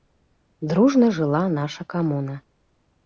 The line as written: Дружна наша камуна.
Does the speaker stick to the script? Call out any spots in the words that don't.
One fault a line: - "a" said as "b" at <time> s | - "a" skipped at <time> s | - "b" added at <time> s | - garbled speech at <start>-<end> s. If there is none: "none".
- "жыла" added at 1.2 s